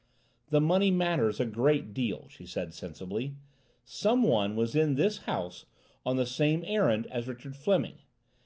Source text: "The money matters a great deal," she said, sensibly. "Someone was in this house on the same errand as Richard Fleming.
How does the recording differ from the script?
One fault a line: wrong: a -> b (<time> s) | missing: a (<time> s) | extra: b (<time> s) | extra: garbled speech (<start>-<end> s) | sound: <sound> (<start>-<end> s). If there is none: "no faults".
no faults